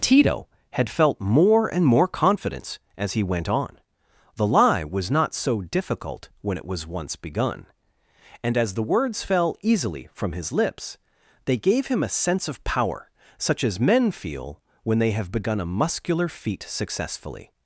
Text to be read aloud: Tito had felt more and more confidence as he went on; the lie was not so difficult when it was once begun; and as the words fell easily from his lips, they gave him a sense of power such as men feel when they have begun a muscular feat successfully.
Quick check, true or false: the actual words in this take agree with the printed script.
true